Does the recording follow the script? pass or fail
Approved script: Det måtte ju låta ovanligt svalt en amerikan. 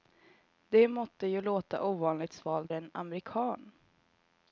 pass